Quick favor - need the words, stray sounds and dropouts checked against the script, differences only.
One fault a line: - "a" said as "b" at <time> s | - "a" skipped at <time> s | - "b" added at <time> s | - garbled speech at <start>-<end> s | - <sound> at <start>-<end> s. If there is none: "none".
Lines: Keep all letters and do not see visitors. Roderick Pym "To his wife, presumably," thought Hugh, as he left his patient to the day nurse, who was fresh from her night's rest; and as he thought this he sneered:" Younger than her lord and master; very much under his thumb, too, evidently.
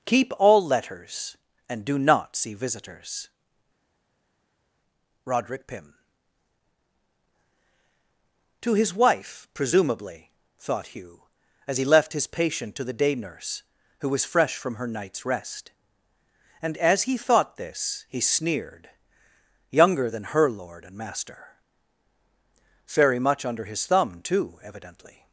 none